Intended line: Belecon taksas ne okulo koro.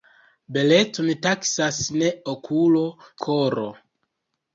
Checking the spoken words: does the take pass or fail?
pass